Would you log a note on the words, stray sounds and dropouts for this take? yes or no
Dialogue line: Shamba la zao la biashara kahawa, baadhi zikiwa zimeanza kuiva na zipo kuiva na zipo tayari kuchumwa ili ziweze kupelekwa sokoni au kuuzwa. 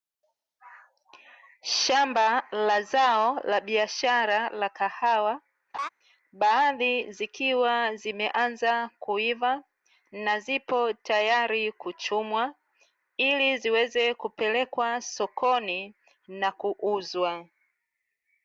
yes